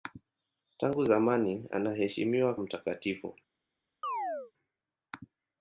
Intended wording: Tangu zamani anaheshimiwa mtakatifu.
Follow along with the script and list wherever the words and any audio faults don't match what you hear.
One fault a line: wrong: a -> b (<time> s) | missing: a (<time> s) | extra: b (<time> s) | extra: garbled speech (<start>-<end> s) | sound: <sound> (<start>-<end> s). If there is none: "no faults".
sound: chirp (4.0-4.5 s)